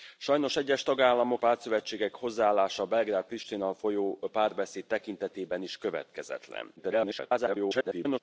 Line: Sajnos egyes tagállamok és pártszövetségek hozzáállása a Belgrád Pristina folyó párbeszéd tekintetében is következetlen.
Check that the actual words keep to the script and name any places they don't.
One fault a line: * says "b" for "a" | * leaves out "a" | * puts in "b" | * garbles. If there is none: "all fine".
* leaves out "és"
* garbles